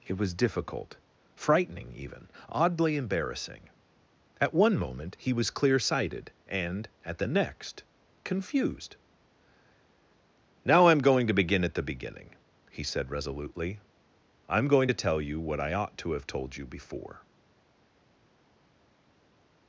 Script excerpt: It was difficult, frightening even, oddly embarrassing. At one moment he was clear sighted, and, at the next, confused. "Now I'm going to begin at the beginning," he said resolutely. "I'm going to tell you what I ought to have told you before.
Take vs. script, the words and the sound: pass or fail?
pass